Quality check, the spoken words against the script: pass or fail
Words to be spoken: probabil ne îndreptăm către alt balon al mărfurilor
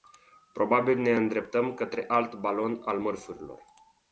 pass